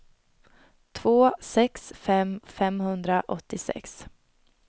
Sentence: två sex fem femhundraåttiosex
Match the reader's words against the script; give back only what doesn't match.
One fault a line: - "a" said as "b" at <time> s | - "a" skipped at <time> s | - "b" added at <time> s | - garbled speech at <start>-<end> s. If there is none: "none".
none